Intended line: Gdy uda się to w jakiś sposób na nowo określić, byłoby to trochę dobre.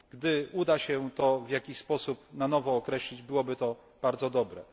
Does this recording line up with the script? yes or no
no